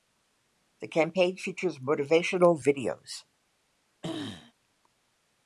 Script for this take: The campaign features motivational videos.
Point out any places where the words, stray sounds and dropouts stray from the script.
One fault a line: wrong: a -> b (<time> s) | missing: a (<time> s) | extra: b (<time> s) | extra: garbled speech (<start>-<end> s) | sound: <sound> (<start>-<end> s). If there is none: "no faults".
sound: throat clearing (4.0-4.5 s)